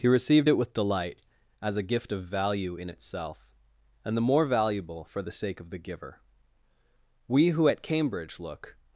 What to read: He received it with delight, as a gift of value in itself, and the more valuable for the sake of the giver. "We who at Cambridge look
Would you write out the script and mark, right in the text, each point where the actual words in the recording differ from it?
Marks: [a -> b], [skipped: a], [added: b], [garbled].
He received it with delight, as a gift of value in itself, and the more valuable for the sake of the giver. "We who at Cambridge look